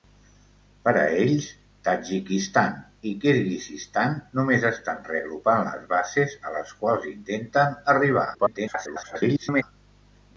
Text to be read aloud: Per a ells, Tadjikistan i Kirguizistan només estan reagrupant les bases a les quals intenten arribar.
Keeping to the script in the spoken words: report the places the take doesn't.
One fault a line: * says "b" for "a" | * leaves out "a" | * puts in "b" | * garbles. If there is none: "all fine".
* garbles